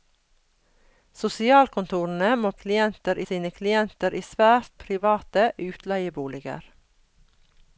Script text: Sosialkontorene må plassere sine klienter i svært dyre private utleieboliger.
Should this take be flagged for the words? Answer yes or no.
yes